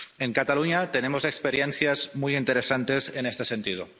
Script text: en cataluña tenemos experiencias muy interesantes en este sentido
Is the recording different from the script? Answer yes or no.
no